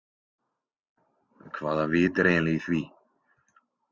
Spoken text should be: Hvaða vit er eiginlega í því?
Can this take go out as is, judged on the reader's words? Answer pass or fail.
pass